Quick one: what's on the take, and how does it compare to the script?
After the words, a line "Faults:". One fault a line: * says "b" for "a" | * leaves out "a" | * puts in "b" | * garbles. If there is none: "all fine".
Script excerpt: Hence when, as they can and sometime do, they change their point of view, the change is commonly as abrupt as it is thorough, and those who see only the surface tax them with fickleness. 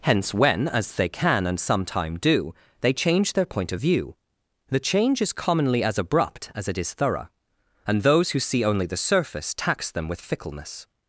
Hence when, as they can and sometime do, they change their point of view, the change is commonly as abrupt as it is thorough, and those who see only the surface tax them with fickleness.
Faults:
all fine